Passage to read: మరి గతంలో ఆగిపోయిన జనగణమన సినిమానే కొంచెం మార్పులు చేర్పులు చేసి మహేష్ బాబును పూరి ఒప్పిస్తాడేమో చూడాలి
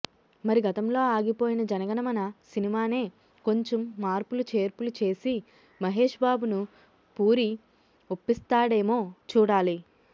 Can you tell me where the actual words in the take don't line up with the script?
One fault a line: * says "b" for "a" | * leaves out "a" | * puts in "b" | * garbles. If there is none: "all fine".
all fine